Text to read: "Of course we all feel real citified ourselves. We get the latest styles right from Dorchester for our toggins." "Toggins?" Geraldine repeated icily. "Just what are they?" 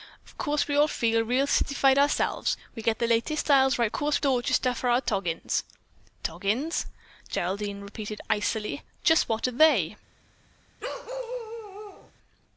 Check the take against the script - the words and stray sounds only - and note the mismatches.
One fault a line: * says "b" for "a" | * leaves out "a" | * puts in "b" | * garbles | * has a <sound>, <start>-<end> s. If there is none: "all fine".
* says "course" for "from"
* has a bark, 10.8-12.1 s